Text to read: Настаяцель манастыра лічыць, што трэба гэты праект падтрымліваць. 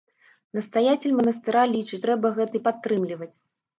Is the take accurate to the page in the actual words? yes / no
no